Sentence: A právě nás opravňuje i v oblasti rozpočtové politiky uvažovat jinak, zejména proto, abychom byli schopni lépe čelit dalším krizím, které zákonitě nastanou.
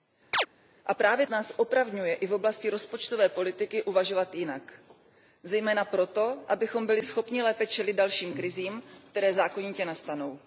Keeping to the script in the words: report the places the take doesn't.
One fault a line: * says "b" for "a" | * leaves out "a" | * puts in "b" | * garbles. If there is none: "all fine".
all fine